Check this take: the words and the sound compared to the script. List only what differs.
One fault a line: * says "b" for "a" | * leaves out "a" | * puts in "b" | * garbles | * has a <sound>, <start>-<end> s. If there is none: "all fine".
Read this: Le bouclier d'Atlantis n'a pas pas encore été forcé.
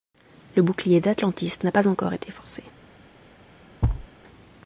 * leaves out "pas"
* has a thud, 3.8-4.1 s